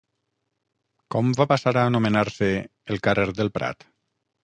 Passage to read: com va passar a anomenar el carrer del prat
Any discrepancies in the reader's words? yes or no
yes